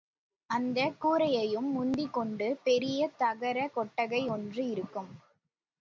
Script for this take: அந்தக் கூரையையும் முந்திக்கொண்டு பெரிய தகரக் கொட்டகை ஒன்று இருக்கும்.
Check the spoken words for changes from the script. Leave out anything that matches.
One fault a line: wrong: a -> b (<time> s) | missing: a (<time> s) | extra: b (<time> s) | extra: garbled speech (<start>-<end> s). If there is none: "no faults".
no faults